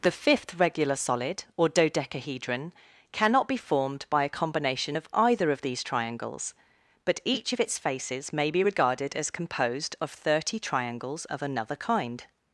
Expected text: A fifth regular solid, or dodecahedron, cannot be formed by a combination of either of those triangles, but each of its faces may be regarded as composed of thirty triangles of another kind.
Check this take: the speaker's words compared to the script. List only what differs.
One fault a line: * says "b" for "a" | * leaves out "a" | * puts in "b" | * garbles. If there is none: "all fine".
* says "The" for "A"
* says "these" for "those"